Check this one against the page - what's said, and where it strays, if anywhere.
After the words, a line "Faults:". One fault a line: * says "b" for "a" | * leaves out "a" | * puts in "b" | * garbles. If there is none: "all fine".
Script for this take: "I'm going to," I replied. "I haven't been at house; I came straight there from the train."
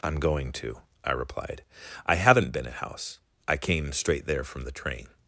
"I'm going to," I replied. "I haven't been at house; I came straight there from the train."
Faults:
all fine